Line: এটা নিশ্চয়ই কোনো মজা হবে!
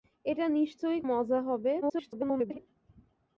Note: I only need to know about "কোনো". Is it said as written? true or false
false